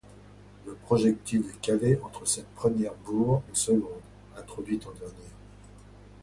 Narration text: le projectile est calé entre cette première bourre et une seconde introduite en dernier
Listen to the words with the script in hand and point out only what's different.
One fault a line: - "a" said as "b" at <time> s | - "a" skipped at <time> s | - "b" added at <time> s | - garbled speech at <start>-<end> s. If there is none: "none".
- "et" skipped at 3.4 s